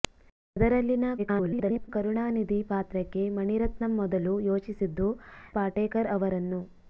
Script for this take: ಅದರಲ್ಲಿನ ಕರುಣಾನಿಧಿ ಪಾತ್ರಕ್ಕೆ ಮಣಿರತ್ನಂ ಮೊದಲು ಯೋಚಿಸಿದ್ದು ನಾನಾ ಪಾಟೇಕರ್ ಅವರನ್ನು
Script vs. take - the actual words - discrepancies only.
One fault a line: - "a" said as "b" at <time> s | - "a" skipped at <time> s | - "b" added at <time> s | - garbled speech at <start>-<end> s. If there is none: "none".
- garbled speech at 1.2-1.9 s
- "ನಾನಾ" skipped at 5.1 s